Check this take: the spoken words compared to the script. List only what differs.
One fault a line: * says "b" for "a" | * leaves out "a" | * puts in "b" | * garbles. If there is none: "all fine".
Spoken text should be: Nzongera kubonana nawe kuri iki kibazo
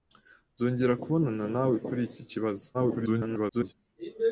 * garbles